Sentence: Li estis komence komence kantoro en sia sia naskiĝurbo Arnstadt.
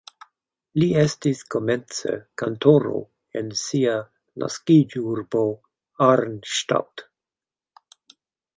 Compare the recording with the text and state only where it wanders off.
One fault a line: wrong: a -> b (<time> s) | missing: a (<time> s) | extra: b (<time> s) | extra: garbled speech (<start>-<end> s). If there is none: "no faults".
missing: komence (2.1 s)
missing: sia (3.9 s)